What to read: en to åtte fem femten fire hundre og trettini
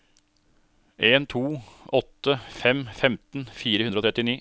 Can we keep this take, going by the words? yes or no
yes